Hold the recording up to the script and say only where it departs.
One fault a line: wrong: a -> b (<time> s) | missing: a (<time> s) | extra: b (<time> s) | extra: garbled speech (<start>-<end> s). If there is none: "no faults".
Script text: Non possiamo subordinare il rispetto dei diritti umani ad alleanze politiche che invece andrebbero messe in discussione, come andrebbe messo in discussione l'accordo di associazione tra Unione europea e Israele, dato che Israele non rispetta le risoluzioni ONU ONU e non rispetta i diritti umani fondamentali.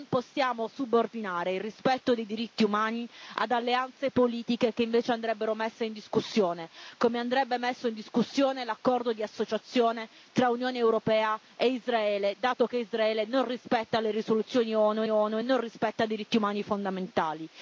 no faults